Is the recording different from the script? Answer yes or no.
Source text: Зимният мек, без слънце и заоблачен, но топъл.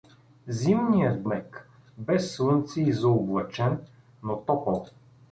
no